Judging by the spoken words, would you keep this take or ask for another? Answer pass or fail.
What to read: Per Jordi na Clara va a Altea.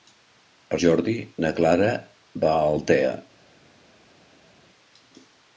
pass